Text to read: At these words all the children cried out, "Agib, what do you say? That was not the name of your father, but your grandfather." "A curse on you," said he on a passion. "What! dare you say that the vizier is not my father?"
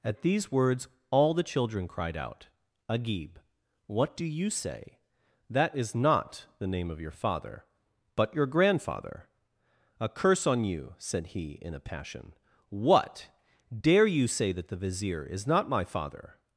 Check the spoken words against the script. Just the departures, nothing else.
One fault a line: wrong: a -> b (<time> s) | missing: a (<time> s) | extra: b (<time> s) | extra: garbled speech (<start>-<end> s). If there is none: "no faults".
wrong: was -> is (5.8 s)
wrong: on -> in (11.6 s)